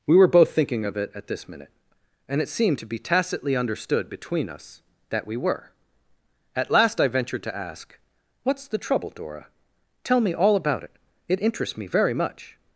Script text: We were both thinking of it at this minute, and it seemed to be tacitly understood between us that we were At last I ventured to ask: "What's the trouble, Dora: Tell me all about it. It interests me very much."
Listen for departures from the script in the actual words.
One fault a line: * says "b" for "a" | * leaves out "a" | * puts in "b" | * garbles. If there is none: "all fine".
all fine